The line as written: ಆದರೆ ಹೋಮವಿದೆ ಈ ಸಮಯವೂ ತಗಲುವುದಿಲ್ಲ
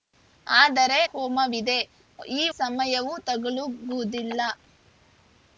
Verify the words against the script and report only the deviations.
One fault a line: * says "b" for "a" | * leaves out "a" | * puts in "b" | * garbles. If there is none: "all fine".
all fine